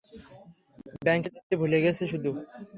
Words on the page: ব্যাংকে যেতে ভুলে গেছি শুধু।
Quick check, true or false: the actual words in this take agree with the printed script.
true